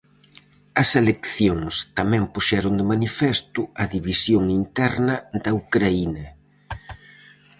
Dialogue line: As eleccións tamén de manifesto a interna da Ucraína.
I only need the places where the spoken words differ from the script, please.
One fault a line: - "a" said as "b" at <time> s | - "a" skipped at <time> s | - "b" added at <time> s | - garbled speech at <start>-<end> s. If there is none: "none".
- "puxeron" added at 2.3 s
- "división" added at 4.0 s